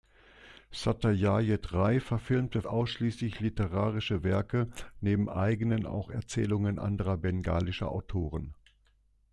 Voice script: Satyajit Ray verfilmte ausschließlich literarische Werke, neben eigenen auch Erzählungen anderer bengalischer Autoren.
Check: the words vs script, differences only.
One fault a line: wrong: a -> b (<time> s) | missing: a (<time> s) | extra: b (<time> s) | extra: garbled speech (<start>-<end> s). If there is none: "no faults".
no faults